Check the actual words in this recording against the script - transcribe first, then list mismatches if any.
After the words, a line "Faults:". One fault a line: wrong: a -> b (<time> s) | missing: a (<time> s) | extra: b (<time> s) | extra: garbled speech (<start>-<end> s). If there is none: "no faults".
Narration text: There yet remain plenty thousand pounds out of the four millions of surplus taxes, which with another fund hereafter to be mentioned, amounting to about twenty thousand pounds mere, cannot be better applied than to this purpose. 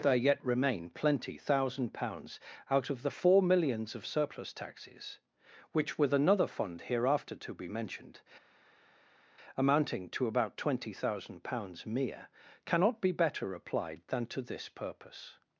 There yet remain plenty thousand pounds out of the four millions of surplus taxes, which with another fund hereafter to be mentioned, amounting to about twenty thousand pounds mere, cannot be better applied than to this purpose.
Faults:
no faults